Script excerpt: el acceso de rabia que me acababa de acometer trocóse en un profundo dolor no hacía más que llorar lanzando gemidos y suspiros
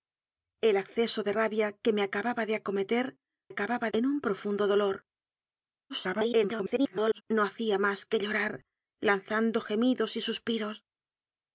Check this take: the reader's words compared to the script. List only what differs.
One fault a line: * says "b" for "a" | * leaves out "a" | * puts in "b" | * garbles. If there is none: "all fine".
* says "acababa" for "trocóse"
* garbles